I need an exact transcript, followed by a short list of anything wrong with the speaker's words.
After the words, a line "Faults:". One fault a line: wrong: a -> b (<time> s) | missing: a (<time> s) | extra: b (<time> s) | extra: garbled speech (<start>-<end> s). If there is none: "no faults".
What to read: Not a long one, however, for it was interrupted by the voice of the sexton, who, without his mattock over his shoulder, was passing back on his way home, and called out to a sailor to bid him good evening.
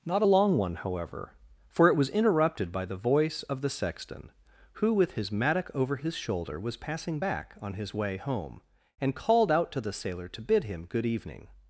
Not a long one, however, for it was interrupted by the voice of the sexton, who, with his mattock over his shoulder, was passing back on his way home, and called out to the sailor to bid him good evening.
Faults:
wrong: without -> with (4.9 s)
wrong: a -> the (9.8 s)